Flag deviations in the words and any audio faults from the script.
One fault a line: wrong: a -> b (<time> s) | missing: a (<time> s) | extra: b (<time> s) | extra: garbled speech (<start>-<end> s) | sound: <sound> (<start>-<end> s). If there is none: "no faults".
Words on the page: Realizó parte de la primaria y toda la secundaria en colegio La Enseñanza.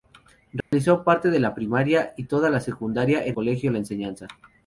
sound: dropout (0.6-0.7 s)